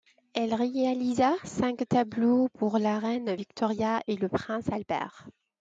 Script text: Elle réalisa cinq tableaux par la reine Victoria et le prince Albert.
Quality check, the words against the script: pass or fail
fail